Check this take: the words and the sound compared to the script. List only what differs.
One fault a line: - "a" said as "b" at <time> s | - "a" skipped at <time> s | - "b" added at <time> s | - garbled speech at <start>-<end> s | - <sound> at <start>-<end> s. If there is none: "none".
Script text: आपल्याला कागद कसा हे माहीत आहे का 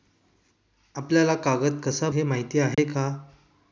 - dropout at 2.7-2.8 s